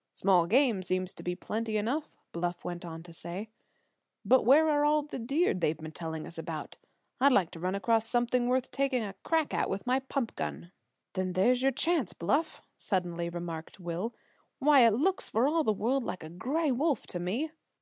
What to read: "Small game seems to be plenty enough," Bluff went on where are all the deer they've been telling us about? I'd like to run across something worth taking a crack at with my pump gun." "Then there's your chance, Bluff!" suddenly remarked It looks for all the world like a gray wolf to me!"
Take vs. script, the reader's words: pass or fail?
fail